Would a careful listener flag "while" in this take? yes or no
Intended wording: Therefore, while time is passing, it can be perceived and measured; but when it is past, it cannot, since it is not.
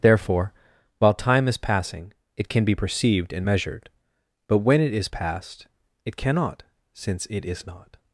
no